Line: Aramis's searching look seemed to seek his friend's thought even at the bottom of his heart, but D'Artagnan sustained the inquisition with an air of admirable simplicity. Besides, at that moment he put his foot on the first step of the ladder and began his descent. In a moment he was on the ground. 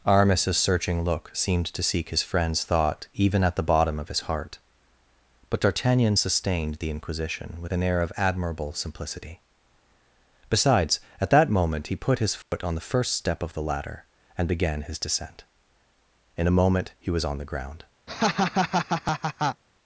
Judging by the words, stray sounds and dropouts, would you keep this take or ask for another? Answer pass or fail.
fail